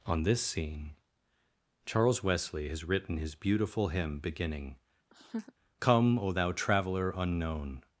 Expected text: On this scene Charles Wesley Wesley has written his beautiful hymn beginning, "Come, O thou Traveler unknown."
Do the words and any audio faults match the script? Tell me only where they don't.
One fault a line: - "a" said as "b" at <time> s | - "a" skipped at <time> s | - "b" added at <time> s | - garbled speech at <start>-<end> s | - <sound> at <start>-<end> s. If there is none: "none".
- "Wesley" skipped at 2.7 s
- laugh at 5.1-5.5 s